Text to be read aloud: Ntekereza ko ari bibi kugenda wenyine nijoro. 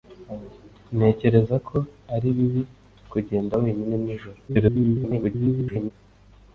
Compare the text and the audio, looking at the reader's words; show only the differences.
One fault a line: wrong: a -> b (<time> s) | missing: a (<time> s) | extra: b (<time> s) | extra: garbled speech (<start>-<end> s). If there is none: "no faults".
extra: garbled speech (4.5-5.9 s)